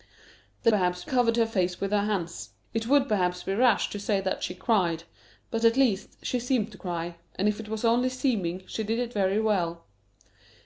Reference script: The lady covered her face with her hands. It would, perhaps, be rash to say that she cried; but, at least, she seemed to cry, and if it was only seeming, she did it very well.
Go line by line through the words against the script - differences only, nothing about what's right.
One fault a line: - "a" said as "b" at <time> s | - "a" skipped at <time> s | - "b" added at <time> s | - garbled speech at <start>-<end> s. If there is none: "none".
- "lady" said as "perhaps" at 0.7 s